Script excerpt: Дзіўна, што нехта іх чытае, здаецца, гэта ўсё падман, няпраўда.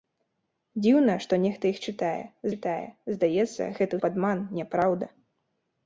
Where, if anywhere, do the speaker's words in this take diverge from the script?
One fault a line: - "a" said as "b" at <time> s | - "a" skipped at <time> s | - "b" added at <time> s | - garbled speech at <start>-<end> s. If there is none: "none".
- "чытае" added at 2.5 s
- "ўсё" skipped at 3.9 s